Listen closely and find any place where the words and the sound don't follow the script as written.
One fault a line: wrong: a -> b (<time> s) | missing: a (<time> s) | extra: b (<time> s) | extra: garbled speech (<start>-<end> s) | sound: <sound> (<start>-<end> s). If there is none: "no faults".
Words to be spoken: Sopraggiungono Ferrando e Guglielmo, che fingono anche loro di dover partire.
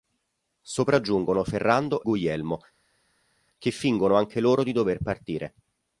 missing: e (2.0 s)